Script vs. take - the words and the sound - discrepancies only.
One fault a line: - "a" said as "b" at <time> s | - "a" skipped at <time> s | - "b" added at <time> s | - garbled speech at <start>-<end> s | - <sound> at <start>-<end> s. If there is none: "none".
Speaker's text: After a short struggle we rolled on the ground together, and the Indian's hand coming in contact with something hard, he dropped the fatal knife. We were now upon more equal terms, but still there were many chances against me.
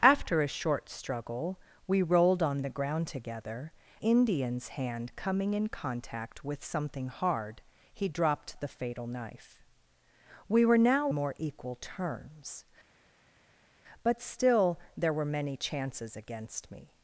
- "and the" skipped at 3.7 s
- "upon" skipped at 11.1 s